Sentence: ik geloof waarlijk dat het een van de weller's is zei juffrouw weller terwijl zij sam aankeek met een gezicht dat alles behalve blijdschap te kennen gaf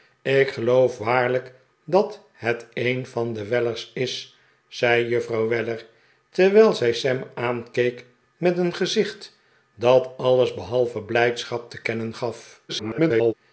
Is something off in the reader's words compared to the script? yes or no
yes